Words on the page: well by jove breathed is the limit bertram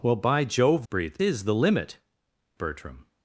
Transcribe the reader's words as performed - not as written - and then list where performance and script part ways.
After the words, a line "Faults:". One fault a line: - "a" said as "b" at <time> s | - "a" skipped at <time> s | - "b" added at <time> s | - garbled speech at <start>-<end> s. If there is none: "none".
well by jove breathed is the limit bertram
Faults:
none